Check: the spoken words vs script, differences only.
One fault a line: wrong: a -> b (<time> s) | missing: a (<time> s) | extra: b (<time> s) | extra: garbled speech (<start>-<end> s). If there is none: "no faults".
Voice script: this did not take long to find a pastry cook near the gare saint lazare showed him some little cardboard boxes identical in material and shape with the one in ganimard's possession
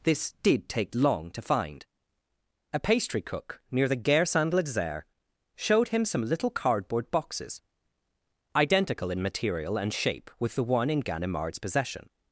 missing: not (0.7 s)